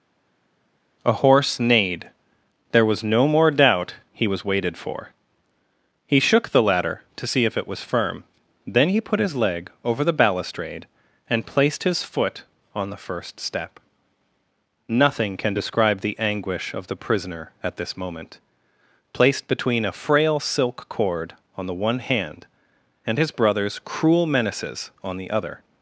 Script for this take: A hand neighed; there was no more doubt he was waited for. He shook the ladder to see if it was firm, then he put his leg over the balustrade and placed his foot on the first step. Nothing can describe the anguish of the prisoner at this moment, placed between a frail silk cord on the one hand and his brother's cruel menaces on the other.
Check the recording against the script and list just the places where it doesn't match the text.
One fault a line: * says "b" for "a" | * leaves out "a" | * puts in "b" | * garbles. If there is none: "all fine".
* says "horse" for "hand"